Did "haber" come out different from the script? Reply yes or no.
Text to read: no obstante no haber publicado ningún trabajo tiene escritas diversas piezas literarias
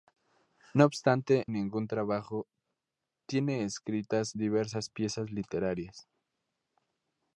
yes